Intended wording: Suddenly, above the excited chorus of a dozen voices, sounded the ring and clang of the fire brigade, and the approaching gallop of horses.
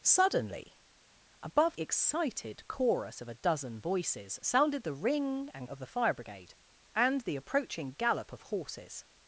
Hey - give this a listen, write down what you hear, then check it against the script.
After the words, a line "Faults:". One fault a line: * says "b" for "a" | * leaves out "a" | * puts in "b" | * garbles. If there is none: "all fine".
Suddenly, above excited chorus of a dozen voices, sounded the ring and of the fire brigade, and the approaching gallop of horses.
Faults:
* leaves out "the"
* leaves out "clang"